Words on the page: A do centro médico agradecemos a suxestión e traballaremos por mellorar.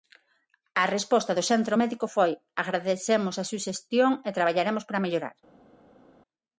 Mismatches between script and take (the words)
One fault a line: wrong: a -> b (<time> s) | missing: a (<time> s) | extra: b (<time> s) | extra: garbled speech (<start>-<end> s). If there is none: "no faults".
extra: resposta (0.9 s)
extra: foi (2.2 s)
wrong: por -> para (4.9 s)